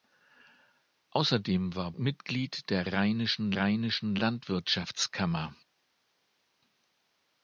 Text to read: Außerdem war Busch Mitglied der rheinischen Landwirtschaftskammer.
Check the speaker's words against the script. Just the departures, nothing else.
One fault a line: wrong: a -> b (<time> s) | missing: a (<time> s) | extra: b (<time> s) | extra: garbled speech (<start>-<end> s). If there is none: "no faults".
missing: Busch (1.9 s)
extra: rheinischen (3.6 s)